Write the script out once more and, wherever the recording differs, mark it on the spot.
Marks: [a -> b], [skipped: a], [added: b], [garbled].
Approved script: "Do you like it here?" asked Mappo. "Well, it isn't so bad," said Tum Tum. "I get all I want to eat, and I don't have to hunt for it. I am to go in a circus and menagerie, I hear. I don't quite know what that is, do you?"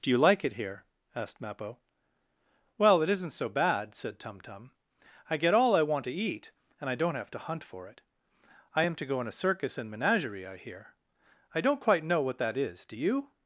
"Do you like it here?" asked Mappo. "Well, it isn't so bad," said Tum Tum. "I get all I want to eat, and I don't have to hunt for it. I am to go in a circus and menagerie, I hear. I don't quite know what that is, do you?"